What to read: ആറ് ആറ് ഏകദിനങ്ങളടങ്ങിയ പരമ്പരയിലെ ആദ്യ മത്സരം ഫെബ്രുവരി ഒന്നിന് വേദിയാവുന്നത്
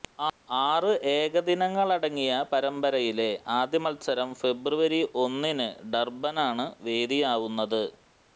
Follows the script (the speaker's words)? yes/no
no